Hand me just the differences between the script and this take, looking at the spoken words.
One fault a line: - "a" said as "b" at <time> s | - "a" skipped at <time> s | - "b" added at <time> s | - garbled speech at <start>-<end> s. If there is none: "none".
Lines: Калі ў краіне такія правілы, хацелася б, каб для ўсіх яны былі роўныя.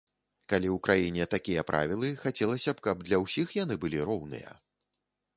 none